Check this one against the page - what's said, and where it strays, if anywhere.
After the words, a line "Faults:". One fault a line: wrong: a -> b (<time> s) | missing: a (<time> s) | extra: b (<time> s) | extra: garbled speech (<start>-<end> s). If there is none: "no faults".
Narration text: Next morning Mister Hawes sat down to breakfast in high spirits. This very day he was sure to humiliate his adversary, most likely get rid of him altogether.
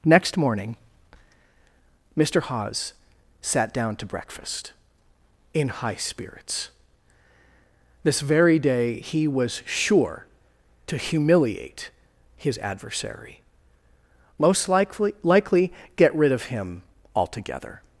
Next morning Mister Hawes sat down to breakfast in high spirits. This very day he was sure to humiliate his adversary, most likely likely get rid of him altogether.
Faults:
extra: likely (15.2 s)